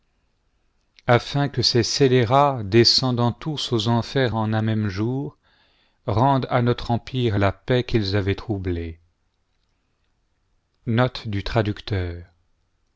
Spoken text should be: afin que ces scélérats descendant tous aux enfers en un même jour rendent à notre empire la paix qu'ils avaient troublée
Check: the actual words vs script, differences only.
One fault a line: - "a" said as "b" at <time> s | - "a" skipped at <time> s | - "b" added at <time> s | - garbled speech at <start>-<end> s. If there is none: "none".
none